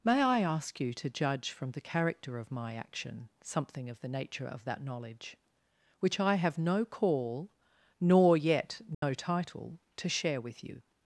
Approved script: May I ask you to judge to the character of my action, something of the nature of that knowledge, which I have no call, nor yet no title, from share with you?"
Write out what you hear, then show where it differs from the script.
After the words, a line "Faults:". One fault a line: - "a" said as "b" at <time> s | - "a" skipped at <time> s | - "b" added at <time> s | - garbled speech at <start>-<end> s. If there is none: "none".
May I ask you to judge from the character of my action, something of the nature of that knowledge, which I have no call, nor yet no title, to share with you?"
Faults:
- "to" said as "from" at 1.5 s
- "from" said as "to" at 10.0 s